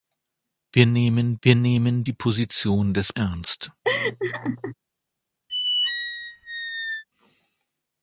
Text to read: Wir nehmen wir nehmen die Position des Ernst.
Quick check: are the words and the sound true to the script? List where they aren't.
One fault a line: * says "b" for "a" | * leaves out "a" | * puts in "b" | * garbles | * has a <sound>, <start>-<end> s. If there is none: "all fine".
* has a laugh, 3.8-4.7 s
* has a squeak, 5.5-7.0 s